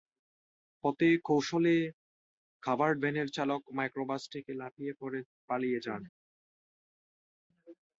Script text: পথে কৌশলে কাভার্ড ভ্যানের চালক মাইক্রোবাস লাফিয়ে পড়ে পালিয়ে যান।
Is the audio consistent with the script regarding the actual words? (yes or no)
no